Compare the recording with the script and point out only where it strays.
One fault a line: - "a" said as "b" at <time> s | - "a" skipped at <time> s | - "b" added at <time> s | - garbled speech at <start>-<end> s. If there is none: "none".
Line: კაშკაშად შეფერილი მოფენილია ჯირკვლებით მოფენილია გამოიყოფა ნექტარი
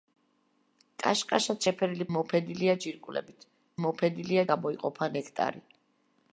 none